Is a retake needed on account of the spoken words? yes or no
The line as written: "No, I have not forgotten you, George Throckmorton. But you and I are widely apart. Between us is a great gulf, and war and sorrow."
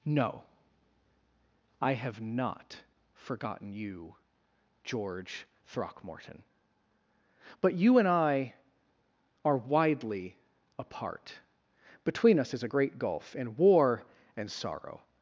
no